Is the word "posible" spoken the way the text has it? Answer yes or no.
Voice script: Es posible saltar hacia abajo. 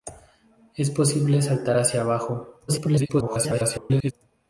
yes